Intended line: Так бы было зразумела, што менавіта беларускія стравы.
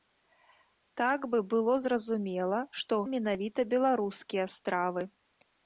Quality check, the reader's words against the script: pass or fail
pass